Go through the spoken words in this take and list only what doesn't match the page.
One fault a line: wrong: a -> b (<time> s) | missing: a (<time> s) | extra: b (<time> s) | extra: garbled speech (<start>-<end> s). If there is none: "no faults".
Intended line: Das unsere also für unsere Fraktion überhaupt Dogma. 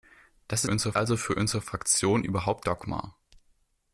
no faults